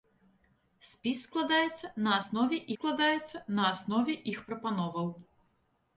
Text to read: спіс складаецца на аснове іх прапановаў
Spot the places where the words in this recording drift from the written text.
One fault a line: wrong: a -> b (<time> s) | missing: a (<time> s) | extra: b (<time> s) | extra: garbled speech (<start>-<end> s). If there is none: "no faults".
extra: складаецца на аснове (2.7 s)